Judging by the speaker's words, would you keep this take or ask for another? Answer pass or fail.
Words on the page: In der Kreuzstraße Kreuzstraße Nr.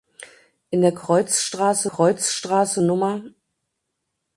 pass